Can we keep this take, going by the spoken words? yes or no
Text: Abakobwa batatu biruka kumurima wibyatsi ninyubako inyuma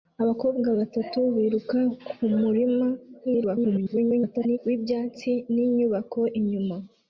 no